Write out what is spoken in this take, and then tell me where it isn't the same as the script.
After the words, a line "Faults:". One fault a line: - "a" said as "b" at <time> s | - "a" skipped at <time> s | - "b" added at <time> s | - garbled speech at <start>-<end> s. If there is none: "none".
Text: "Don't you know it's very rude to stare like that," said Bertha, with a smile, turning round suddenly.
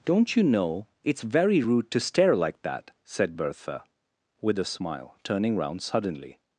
"Don't you know it's very rude to stare like that," said Bertha, with a smile, turning round suddenly.
Faults:
none